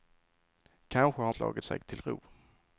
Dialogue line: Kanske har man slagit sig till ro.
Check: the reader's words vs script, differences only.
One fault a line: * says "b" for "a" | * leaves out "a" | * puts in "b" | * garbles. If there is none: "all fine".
* leaves out "man"